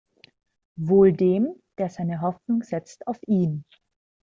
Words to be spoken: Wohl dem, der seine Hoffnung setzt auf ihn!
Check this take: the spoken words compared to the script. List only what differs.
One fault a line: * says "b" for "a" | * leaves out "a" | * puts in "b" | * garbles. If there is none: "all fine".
all fine